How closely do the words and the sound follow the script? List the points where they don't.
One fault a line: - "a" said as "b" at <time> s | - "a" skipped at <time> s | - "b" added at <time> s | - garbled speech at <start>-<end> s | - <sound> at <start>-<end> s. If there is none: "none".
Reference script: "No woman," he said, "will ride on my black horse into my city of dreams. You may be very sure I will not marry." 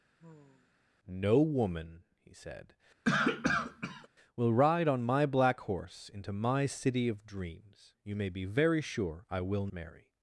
- sigh at 0.2-0.7 s
- cough at 3.0-4.1 s
- "not" skipped at 9.7 s